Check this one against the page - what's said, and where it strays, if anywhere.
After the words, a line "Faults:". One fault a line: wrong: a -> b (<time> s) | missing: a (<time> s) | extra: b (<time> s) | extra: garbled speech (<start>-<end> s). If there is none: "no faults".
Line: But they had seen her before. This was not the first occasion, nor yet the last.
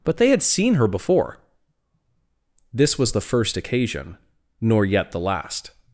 But they had seen her before. This was the first occasion, nor yet the last.
Faults:
missing: not (3.1 s)